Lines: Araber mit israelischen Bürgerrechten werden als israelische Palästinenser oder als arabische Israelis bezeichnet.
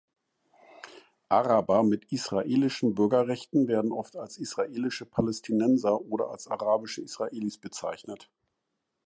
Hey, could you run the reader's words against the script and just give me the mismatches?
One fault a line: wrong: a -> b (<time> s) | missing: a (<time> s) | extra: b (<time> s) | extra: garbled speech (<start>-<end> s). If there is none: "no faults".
extra: oft (3.9 s)